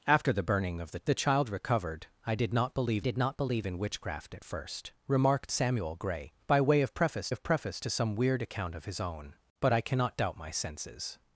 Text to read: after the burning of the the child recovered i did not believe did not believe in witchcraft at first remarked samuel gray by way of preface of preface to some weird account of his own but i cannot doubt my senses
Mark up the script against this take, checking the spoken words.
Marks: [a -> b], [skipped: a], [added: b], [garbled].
after the burning of the the child recovered i did not believe did not believe in witchcraft at first remarked samuel gray by way of preface of preface to some weird account of his own but i cannot doubt my senses